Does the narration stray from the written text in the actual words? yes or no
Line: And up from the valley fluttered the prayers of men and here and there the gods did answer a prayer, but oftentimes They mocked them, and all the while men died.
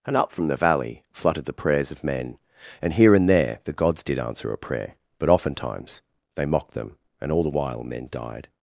no